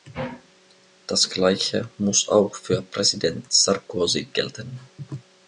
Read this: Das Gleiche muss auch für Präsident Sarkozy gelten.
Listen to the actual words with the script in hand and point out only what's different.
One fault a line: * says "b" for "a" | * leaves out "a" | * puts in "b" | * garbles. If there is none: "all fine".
all fine